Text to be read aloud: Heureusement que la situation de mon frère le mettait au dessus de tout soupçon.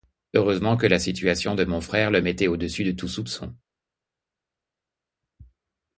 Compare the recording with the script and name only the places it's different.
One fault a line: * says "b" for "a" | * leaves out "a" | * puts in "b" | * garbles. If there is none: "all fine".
all fine